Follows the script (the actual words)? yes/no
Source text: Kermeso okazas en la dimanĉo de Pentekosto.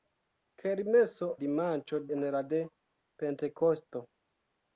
no